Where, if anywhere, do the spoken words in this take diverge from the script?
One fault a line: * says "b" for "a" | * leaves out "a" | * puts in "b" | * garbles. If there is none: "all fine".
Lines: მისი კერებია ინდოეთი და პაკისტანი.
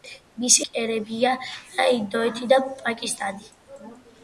all fine